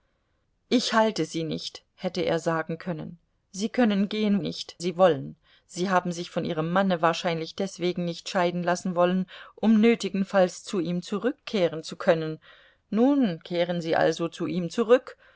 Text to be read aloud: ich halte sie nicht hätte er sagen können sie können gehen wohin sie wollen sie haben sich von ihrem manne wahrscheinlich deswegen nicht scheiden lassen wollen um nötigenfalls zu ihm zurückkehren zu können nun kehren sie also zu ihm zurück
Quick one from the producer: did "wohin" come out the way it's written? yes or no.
no